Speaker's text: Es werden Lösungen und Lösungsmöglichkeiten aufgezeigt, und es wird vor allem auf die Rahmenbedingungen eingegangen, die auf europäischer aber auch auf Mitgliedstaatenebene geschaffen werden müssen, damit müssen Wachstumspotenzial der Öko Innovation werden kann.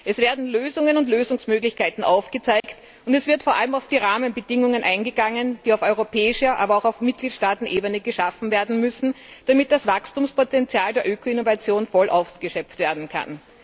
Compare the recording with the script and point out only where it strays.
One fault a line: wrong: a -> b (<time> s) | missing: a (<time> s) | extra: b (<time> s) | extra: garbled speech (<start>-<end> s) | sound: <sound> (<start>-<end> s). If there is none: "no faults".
sound: dropout (2.6-2.6 s)
wrong: müssen -> das (9.7 s)
extra: voll ausgeschöpft (11.9 s)